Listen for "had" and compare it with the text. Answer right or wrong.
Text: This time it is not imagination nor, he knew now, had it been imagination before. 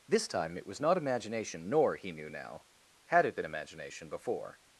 right